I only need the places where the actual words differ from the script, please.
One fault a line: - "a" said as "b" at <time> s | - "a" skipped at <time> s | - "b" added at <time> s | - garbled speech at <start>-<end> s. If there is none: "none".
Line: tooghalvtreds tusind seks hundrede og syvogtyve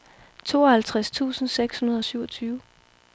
none